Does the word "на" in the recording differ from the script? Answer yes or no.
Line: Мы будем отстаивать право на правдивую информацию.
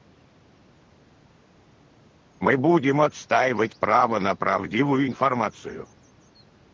no